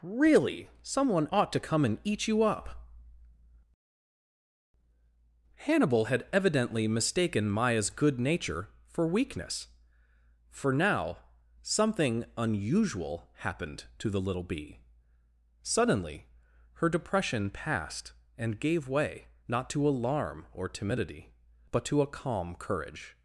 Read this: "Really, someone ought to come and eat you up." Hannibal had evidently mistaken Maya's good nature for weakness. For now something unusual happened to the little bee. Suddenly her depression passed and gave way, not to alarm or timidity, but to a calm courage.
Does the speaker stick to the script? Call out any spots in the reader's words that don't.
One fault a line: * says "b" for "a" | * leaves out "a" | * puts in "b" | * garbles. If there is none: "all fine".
all fine